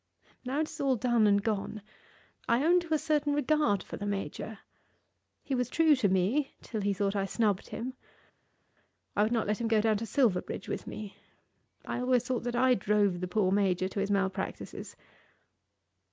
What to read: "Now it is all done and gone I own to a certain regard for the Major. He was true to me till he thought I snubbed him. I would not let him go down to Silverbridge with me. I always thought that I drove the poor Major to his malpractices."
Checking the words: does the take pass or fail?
pass